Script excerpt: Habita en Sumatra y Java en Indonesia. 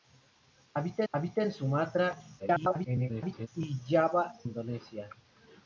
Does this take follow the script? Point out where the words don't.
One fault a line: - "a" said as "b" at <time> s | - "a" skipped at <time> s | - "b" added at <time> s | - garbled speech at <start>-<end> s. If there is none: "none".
- "habita" added at 1.1 s
- garbled speech at 2.4-3.5 s
- "en" skipped at 4.3 s